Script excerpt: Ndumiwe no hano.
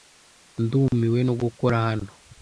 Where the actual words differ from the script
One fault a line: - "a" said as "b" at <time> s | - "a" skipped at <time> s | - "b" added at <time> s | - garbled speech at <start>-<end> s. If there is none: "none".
- "gukora" added at 1.4 s